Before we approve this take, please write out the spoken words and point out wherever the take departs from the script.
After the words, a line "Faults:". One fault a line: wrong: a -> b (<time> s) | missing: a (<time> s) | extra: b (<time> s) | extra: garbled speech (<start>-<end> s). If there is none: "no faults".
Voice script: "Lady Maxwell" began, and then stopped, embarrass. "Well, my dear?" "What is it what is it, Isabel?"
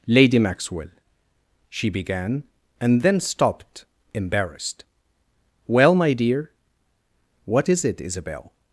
"Lady Maxwell" she began, and then stopped, embarrassed. "Well, my dear?" "What is it, Isabel?"
Faults:
extra: she (1.7 s)
wrong: embarrass -> embarrassed (4.2 s)
missing: what is it (8.0 s)